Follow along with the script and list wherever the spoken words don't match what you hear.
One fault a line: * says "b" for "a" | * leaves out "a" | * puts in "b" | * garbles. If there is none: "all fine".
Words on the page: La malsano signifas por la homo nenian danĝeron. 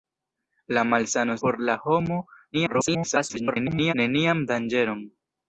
* leaves out "signifas"
* garbles